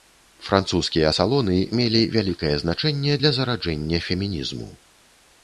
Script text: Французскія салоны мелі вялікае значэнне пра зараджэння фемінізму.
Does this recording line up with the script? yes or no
no